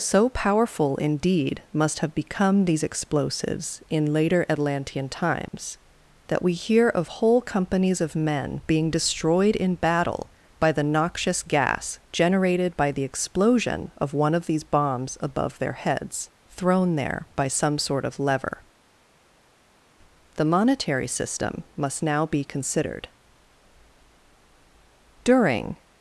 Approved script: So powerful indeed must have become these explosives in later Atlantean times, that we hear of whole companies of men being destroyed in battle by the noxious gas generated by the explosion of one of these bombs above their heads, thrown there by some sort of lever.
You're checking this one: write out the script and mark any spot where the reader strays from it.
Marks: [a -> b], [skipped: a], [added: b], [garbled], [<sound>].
So powerful indeed must have become these explosives in later Atlantean times, [dropout] that we hear of whole companies of men being destroyed in battle by the noxious gas generated by the explosion of one of these bombs above their heads, thrown there by some sort of lever. [added: The monetary system must now be considered During]